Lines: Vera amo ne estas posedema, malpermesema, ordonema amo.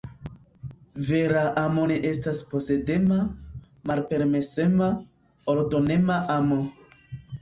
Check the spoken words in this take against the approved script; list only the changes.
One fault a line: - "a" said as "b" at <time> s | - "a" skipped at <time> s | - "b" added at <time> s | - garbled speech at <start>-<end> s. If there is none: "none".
none